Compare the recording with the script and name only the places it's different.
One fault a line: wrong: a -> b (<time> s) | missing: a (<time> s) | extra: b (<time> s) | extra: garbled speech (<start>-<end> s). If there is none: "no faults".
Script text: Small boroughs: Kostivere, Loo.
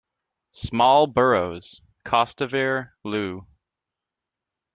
no faults